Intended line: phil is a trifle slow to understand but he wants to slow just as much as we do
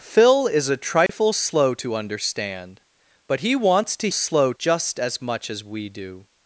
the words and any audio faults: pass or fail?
fail